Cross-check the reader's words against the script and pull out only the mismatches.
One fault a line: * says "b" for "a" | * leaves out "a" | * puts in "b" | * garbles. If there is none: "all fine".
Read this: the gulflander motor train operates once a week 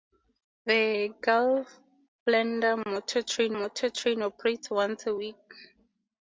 * puts in "motor train"